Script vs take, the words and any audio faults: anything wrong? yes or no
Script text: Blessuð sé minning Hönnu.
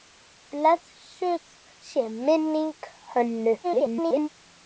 yes